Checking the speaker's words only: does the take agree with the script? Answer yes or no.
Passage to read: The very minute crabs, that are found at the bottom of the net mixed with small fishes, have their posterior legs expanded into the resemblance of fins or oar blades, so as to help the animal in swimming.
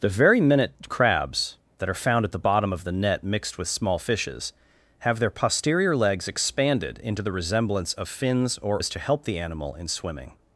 no